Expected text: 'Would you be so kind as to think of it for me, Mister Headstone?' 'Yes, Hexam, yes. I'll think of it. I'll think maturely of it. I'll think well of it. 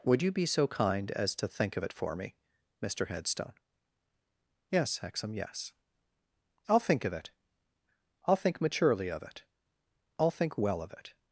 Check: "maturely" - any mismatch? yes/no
no